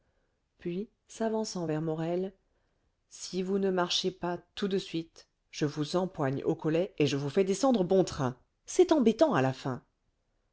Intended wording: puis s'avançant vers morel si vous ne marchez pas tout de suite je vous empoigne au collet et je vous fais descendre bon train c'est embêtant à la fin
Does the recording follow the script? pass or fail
pass